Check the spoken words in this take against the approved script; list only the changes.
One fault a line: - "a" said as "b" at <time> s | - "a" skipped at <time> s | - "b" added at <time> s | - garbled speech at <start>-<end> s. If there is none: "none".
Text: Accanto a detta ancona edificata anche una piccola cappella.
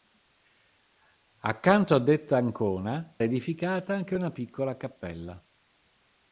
none